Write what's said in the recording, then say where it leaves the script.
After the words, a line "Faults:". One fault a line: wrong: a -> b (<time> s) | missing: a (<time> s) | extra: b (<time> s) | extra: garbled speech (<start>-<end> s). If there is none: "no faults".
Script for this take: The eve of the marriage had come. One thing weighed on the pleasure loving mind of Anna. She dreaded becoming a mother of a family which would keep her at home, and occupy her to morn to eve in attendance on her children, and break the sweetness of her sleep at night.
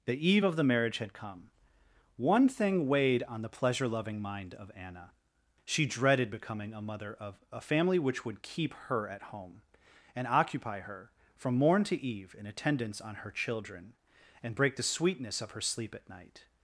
The eve of the marriage had come. One thing weighed on the pleasure loving mind of Anna. She dreaded becoming a mother of a family which would keep her at home, and occupy her from morn to eve in attendance on her children, and break the sweetness of her sleep at night.
Faults:
wrong: to -> from (11.4 s)